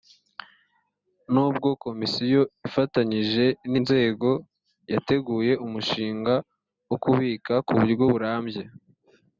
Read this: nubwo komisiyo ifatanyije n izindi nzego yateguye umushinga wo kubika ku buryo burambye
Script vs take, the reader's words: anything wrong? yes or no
yes